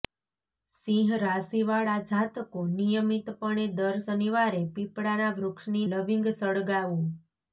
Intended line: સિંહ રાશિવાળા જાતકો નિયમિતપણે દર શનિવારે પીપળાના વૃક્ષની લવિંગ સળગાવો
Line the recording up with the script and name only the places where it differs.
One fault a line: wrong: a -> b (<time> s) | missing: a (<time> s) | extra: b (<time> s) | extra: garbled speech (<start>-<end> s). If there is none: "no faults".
no faults